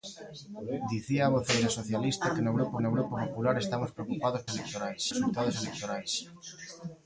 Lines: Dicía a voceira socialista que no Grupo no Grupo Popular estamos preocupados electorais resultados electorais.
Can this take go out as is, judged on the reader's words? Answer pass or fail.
pass